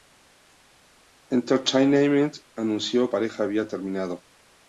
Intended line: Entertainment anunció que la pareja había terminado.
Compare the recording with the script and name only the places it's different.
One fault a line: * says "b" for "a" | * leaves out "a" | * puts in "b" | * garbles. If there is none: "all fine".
* leaves out "que la"